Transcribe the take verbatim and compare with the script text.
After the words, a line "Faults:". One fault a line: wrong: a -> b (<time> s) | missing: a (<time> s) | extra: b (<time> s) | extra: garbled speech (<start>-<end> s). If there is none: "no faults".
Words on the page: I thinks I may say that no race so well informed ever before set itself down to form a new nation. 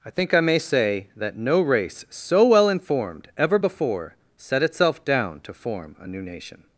I think I may say that no race so well informed ever before set itself down to form a new nation.
Faults:
wrong: thinks -> think (0.1 s)